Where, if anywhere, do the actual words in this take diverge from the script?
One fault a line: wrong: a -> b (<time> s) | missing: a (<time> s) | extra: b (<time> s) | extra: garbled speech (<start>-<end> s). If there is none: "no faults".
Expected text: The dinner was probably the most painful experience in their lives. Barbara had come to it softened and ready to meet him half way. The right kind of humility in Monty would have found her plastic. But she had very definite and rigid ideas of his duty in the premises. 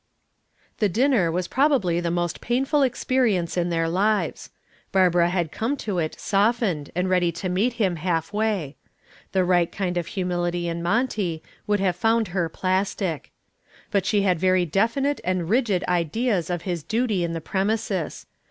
no faults